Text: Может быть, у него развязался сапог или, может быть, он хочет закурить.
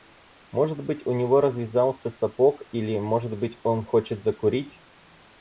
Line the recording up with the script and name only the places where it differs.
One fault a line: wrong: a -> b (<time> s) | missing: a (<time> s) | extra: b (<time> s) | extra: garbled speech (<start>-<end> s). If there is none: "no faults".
no faults